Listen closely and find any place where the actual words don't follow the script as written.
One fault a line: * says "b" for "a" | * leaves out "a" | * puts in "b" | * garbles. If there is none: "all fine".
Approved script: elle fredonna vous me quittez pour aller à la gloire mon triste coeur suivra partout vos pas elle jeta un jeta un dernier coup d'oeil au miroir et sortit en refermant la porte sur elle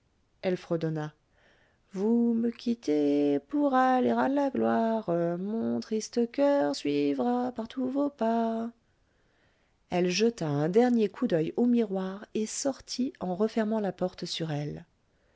* leaves out "jeta un"